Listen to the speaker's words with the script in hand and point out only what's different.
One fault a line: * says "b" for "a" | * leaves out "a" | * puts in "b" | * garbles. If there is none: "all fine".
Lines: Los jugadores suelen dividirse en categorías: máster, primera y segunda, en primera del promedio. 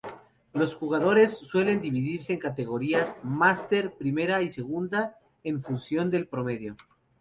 * says "función" for "primera"